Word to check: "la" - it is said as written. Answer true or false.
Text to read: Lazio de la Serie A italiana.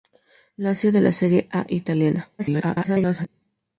true